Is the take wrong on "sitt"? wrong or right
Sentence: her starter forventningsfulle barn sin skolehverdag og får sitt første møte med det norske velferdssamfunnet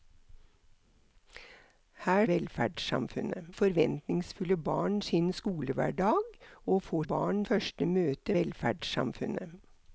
wrong